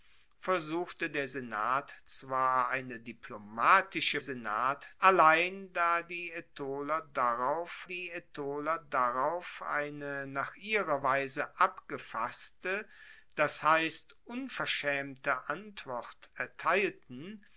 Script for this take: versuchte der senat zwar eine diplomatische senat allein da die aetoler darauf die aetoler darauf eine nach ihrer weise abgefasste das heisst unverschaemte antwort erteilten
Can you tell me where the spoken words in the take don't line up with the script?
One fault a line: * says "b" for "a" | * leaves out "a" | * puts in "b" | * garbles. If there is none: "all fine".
all fine